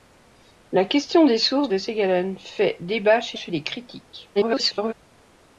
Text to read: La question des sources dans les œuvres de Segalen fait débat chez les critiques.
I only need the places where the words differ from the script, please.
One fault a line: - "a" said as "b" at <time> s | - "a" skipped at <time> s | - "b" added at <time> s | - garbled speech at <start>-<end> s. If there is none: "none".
- "dans les œuvres" skipped at 1.7 s
- "chez" added at 3.3 s
- garbled speech at 4.3-4.9 s